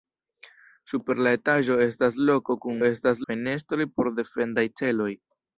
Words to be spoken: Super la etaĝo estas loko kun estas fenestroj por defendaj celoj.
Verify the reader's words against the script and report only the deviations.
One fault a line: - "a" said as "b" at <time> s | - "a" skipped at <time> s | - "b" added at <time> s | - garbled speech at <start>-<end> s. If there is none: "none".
none